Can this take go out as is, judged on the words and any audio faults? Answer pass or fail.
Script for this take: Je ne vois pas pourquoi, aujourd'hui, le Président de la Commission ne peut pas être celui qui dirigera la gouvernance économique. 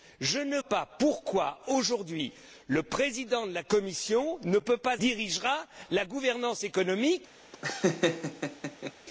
fail